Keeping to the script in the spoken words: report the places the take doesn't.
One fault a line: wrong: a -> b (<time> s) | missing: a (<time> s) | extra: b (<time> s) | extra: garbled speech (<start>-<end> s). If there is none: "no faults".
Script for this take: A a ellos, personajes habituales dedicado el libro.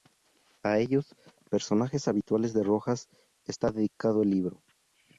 missing: a (0.8 s)
extra: de Rojas está (2.5 s)